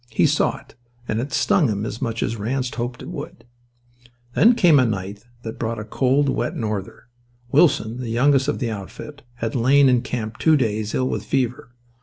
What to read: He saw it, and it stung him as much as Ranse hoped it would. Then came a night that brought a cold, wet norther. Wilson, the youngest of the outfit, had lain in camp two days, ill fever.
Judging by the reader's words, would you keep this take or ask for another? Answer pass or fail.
fail